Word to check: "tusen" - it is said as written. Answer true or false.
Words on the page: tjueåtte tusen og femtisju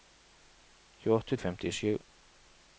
false